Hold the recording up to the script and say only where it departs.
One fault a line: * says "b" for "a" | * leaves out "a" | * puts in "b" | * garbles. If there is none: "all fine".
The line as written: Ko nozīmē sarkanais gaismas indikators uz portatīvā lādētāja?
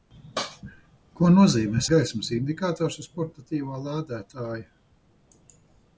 * leaves out "sarkanais"